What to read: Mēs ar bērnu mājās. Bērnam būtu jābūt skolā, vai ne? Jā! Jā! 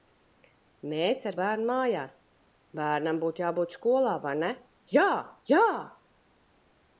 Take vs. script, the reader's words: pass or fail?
pass